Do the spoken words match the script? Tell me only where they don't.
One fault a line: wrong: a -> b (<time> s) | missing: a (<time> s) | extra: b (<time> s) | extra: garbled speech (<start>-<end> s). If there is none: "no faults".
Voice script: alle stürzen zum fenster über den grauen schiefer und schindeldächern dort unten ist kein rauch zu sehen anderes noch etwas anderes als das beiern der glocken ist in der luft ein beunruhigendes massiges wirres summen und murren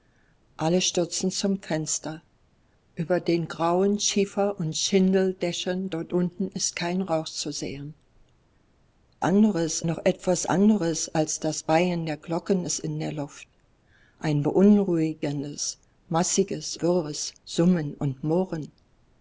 no faults